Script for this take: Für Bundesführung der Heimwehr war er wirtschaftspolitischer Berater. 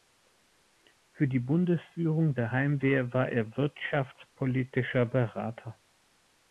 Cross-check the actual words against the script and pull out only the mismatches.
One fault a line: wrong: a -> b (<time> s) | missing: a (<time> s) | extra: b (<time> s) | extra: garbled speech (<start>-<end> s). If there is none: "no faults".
extra: die (1.3 s)